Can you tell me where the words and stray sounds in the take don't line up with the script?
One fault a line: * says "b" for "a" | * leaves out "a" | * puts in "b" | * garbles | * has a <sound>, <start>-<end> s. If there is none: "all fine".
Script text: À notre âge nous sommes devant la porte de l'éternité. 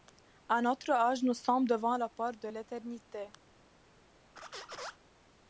* has a squeak, 4.4-5.0 s